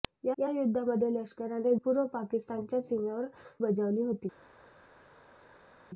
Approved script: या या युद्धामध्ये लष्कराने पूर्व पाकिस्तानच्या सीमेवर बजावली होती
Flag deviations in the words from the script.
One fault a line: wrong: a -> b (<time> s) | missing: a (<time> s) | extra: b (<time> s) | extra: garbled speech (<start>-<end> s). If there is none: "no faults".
no faults